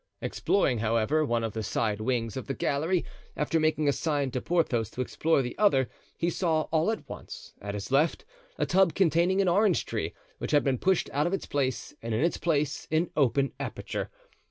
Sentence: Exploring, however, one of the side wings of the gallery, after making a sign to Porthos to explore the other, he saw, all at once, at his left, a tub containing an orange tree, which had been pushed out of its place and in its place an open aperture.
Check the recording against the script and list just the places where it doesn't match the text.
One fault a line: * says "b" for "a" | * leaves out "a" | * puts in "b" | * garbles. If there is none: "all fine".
all fine